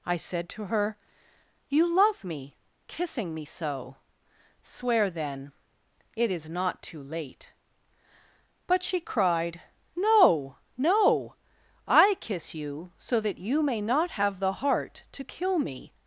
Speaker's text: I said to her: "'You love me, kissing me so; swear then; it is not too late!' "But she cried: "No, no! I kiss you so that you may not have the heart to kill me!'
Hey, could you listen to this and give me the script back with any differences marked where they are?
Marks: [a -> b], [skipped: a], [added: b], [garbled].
I said to her: "'You love me, kissing me so; swear then; it is not too late!' "But she cried: "No, no! I kiss you so that you may not have the heart to kill me!'